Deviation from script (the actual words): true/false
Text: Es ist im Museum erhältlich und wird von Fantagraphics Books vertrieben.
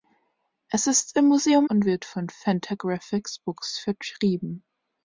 true